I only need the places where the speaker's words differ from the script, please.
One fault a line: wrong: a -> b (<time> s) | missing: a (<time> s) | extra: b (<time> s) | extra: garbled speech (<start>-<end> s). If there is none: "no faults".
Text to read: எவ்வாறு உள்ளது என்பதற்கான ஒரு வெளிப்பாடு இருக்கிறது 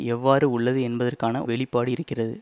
missing: ஒரு (1.4 s)